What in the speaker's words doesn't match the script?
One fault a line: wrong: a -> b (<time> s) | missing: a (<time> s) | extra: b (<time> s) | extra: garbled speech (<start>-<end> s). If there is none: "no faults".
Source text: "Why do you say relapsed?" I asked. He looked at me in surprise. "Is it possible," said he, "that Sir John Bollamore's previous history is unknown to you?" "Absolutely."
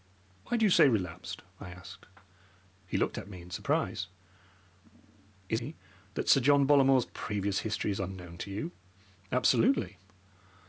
missing: it possible said (5.6 s)